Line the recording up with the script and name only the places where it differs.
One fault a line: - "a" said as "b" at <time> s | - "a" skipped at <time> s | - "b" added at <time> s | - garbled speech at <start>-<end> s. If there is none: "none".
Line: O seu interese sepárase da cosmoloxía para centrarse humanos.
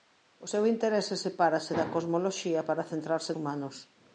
none